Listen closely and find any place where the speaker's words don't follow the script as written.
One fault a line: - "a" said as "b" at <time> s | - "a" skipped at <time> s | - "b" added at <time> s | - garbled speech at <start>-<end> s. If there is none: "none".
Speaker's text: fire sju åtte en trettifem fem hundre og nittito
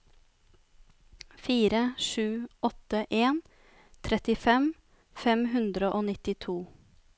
none